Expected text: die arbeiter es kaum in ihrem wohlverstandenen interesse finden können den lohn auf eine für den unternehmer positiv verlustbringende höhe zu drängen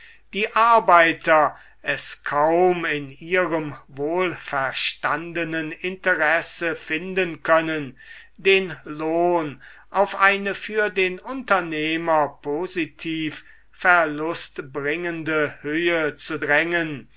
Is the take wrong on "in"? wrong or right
right